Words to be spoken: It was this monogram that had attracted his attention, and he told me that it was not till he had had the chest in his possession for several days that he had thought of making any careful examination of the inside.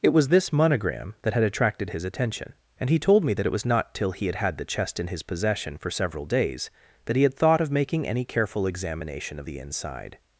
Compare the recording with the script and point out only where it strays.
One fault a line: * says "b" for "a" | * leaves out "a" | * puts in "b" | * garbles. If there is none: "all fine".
all fine